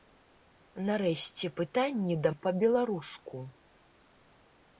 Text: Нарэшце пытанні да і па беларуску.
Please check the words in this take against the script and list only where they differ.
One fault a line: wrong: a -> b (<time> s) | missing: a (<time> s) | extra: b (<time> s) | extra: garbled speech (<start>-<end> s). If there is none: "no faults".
no faults